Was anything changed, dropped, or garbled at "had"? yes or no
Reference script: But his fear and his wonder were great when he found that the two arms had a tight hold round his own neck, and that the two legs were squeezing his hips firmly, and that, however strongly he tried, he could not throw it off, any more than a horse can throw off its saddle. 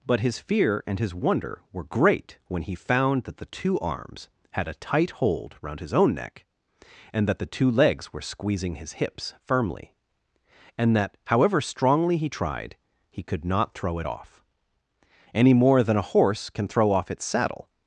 no